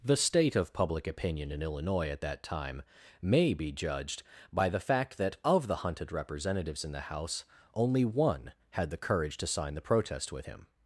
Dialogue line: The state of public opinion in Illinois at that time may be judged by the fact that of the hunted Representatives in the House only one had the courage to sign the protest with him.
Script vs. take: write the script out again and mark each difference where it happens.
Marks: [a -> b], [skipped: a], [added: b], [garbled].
The state of public opinion in Illinois at that time may be judged by the fact that of the hunted Representatives in the House only one had the courage to sign the protest with him.